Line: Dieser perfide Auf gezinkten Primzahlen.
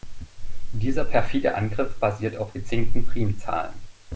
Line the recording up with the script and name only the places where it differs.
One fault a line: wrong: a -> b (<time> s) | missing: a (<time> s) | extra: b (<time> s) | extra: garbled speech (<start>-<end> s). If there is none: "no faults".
extra: Angriff basiert (1.6 s)